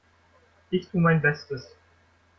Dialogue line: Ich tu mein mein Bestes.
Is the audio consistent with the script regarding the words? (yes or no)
no